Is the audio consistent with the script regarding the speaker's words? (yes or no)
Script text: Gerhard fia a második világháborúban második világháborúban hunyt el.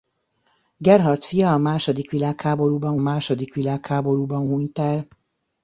yes